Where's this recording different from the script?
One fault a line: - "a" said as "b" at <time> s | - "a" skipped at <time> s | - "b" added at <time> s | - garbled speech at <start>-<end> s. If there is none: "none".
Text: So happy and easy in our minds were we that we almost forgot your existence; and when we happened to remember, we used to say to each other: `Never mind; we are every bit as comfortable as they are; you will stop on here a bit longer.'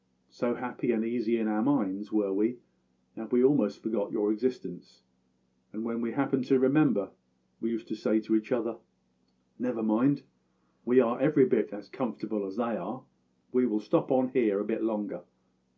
- "you" said as "we" at 13.5 s